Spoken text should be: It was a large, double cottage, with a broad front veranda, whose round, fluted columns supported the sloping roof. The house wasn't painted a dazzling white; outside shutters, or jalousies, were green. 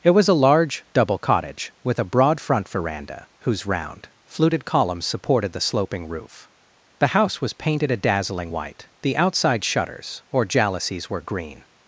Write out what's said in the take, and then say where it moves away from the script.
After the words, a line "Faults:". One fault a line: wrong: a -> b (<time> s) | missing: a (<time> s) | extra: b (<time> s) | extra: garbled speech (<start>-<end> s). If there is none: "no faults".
It was a large, double cottage, with a broad front veranda, whose round, fluted columns supported the sloping roof. The house was painted a dazzling white; the outside shutters, or jalousies, were green.
Faults:
wrong: wasn't -> was (7.4 s)
extra: the (9.0 s)